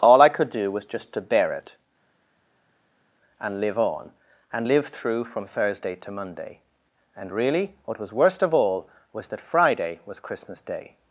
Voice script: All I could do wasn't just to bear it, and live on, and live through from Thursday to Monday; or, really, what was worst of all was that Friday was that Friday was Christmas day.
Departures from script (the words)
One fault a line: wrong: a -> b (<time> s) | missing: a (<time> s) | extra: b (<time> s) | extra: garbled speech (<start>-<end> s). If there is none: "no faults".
wrong: wasn't -> was (0.7 s)
wrong: or -> and (7.2 s)
missing: that Friday was (10.2 s)